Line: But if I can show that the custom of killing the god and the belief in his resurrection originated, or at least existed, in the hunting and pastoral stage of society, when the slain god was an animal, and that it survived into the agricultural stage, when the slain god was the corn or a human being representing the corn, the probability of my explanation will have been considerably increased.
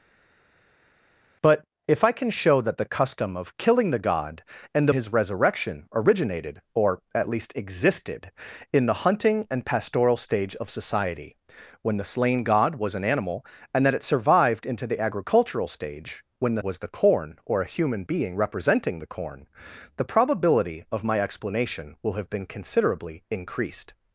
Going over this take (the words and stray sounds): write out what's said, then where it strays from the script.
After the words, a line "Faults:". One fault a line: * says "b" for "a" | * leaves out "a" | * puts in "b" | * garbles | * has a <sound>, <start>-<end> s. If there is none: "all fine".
But if I can show that the custom of killing the god and his resurrection originated, or at least existed, in the hunting and pastoral stage of society, when the slain god was an animal, and that it survived into the agricultural stage, when the was the corn or a human being representing the corn, the probability of my explanation will have been considerably increased.
Faults:
* leaves out "the belief in"
* leaves out "slain god"